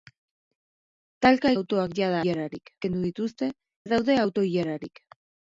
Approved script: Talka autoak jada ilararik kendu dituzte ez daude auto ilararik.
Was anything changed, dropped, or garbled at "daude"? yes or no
no